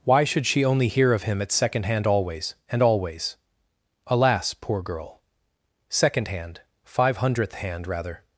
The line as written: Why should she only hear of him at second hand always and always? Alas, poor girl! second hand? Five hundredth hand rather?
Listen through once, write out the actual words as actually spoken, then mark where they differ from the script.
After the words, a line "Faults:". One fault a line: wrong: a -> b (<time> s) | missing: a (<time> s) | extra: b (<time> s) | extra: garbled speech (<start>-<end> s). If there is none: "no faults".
Why should she only hear of him at second hand always and always? Alas, poor girl! second hand? Five hundredth hand rather?
Faults:
no faults